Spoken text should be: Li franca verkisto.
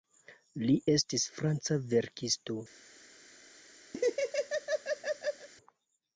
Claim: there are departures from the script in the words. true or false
true